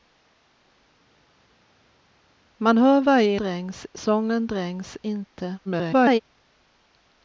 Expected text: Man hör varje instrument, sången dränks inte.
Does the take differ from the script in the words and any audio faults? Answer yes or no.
yes